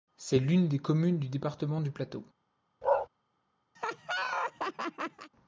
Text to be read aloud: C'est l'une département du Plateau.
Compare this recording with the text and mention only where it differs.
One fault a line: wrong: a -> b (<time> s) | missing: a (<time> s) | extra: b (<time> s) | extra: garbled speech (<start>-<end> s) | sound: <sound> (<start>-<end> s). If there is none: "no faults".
extra: des communes du (0.7 s)
sound: bark (2.8-3.1 s)
sound: laugh (3.8-5.3 s)